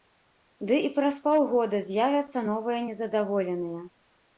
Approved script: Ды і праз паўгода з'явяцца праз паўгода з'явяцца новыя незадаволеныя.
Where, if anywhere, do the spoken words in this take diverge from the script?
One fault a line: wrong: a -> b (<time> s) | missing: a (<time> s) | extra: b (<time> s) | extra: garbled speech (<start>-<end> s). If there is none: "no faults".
missing: праз паўгода з'явяцца (2.5 s)